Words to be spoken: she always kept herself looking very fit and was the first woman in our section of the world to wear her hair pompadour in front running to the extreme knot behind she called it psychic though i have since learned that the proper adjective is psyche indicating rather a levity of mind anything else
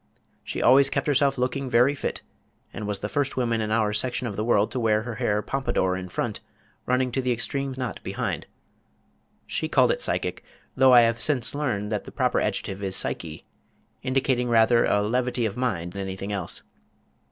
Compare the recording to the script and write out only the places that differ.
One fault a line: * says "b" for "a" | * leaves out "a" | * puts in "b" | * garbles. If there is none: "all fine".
all fine